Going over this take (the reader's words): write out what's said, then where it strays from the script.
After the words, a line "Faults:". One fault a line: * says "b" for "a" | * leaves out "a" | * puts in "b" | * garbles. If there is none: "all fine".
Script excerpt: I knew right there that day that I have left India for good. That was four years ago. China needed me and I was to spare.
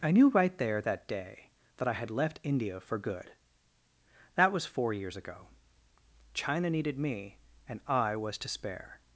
I knew right there that day that I had left India for good. That was four years ago. China needed me and I was to spare.
Faults:
* says "had" for "have"